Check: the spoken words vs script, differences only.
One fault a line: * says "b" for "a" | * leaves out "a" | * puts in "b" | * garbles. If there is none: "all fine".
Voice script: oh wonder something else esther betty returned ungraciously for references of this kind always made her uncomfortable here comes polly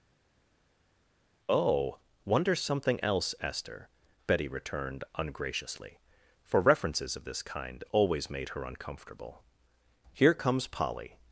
all fine